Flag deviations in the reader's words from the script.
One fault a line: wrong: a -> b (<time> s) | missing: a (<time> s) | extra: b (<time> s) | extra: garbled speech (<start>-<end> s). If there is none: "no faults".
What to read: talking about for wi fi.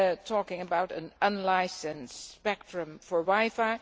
extra: an unlicensed spectrum (0.9 s)